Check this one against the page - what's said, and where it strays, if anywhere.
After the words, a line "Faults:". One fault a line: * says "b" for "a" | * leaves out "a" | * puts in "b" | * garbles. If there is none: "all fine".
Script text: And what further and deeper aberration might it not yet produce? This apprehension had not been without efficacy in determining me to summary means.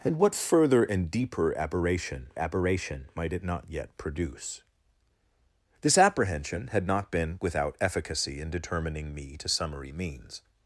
And what further and deeper aberration aberration might it not yet produce? This apprehension had not been without efficacy in determining me to summary means.
Faults:
* puts in "aberration"